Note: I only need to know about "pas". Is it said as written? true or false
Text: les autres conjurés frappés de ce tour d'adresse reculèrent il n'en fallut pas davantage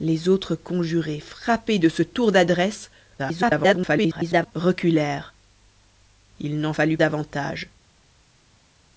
false